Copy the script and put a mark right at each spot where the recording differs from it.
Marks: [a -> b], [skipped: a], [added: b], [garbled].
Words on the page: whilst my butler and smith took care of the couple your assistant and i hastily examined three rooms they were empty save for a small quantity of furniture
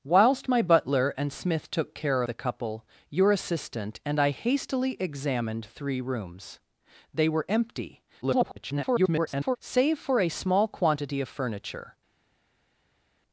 whilst my butler and smith took care [skipped: of] the couple your assistant and i hastily examined three rooms they were empty [garbled] save for a small quantity of furniture